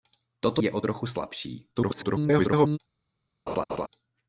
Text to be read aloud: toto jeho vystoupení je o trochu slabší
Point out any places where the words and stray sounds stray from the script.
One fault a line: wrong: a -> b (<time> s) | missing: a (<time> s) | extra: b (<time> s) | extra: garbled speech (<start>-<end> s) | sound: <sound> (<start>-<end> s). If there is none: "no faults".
missing: jeho vystoupení (0.6 s)
extra: garbled speech (1.8-2.8 s)
sound: laugh (3.5-3.9 s)